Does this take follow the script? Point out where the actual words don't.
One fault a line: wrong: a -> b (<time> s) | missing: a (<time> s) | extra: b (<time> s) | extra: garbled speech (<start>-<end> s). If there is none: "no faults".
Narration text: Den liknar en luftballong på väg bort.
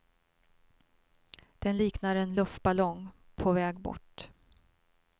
no faults